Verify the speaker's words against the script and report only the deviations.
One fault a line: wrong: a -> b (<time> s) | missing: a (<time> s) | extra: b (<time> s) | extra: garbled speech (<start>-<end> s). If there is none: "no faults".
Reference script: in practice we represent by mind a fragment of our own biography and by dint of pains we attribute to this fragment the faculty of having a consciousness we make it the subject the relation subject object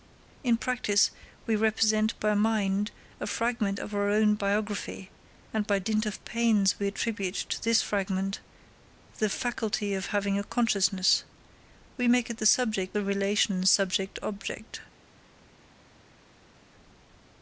no faults